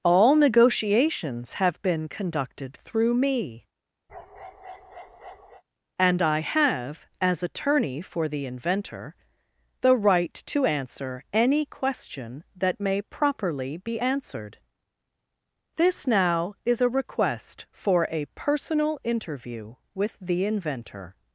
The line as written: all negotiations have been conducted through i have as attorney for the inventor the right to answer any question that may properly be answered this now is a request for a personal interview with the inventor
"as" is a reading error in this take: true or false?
false